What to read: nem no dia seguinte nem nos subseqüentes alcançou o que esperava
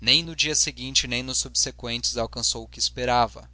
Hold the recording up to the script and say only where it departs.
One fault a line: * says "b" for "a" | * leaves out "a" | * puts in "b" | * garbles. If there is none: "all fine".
all fine